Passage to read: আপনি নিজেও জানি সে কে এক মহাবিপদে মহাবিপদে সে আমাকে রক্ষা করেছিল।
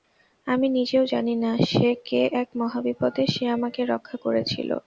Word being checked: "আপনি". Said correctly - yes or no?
no